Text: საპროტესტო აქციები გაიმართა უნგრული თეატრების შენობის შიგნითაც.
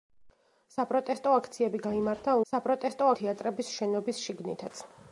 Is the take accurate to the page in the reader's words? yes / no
no